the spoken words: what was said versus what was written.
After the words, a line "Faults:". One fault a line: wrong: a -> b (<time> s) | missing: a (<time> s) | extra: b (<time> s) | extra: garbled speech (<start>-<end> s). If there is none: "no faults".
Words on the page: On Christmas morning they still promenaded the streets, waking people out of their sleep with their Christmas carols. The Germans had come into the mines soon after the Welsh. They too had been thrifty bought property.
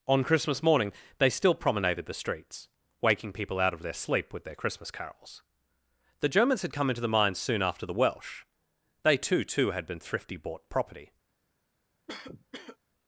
On Christmas morning they still promenaded the streets, waking people out of their sleep with their Christmas carols. The Germans had come into the mines soon after the Welsh. They too too had been thrifty bought property.
Faults:
extra: too (9.4 s)